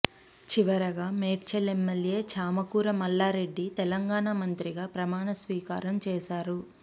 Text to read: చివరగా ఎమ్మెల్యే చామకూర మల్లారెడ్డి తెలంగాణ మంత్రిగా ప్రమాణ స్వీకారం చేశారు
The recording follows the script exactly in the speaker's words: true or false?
false